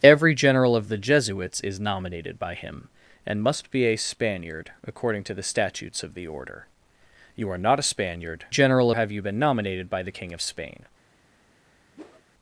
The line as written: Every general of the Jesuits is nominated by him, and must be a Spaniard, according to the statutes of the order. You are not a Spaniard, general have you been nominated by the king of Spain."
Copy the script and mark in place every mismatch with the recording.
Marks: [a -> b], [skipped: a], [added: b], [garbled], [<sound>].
Every general of the Jesuits is nominated by him, and must be a Spaniard, according to the statutes of the order. You are not a Spaniard, general have you been nominated by the king of Spain." [whoosh]